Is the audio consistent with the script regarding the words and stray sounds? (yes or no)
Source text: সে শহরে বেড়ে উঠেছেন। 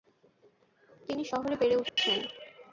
no